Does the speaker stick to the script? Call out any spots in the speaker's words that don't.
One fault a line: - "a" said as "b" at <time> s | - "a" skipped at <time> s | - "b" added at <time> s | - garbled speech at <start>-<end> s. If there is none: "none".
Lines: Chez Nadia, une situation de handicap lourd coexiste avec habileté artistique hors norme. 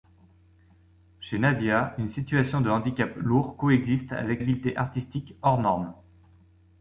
none